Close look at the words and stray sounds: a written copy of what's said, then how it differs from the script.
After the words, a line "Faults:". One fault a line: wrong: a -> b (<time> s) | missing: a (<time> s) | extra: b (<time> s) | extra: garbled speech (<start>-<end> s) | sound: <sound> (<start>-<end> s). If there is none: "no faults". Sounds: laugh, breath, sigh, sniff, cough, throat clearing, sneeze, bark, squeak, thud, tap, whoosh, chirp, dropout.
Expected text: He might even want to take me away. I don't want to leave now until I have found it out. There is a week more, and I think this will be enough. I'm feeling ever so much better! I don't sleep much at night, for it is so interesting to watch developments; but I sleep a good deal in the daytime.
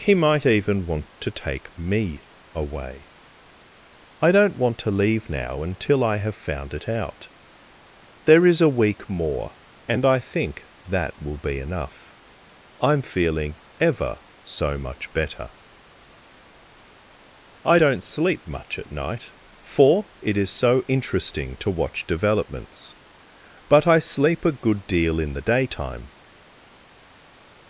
He might even want to take me away. I don't want to leave now until I have found it out. There is a week more, and I think that will be enough. I'm feeling ever so much better! I don't sleep much at night, for it is so interesting to watch developments; but I sleep a good deal in the daytime.
Faults:
wrong: this -> that (10.9 s)